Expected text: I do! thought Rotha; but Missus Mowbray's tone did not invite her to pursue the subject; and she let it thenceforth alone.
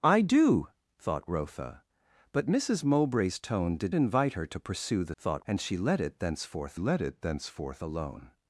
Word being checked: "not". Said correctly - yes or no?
no